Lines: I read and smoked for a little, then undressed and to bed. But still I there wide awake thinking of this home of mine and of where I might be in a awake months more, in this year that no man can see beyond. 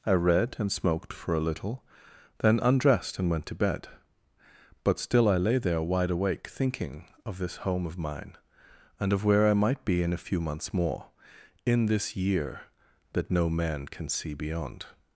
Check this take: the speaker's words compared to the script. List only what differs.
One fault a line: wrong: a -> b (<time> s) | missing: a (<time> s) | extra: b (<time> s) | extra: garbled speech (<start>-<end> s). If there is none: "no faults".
extra: went (3.3 s)
extra: lay (5.4 s)
wrong: awake -> few (10.2 s)